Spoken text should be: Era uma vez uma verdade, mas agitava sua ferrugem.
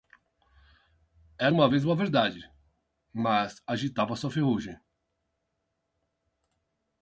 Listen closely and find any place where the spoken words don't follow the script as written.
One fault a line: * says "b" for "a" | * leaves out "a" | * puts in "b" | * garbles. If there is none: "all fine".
all fine